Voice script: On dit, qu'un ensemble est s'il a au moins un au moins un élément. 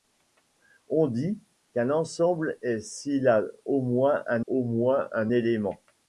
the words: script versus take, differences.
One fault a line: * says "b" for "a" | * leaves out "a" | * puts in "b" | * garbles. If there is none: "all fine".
all fine